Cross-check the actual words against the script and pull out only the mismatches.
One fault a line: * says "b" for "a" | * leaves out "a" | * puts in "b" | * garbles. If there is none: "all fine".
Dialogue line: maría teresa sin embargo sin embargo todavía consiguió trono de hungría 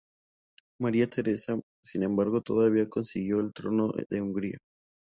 * leaves out "sin embargo"
* puts in "el"